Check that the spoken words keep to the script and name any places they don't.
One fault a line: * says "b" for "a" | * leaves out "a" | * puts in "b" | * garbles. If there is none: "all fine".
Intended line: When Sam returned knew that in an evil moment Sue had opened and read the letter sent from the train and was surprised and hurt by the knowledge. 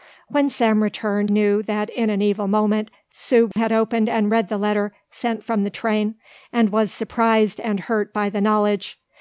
all fine